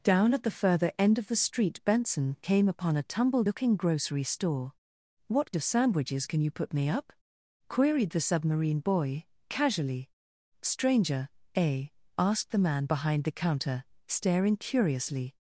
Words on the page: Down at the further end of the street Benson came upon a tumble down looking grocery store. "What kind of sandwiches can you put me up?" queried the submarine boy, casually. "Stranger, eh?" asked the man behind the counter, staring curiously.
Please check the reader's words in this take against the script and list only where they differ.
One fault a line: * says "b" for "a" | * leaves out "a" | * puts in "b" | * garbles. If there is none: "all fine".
* leaves out "down"
* leaves out "kind"